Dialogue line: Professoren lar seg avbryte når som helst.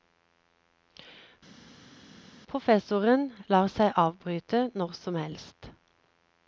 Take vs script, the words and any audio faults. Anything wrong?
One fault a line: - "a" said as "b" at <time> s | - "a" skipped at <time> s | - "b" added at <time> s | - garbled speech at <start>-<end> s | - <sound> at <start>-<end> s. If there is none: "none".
none